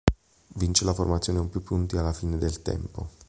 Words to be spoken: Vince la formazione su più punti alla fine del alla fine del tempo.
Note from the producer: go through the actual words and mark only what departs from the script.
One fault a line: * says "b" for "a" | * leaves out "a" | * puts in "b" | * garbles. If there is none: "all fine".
* says "con" for "su"
* leaves out "alla fine del"